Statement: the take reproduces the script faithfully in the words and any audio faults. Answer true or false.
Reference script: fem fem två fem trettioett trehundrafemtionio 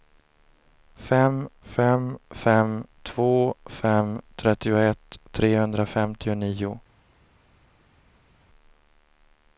false